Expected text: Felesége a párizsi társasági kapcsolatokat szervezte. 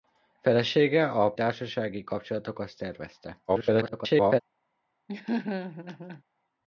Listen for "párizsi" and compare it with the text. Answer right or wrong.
wrong